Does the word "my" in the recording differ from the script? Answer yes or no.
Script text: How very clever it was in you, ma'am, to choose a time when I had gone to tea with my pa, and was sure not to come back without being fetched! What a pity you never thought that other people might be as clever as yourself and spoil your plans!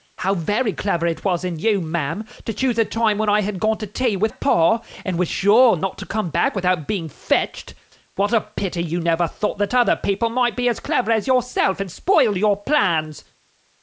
yes